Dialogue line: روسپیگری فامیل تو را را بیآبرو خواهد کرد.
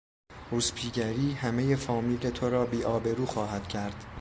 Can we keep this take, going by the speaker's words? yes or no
no